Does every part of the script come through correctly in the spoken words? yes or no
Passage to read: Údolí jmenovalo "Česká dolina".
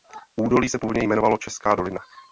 no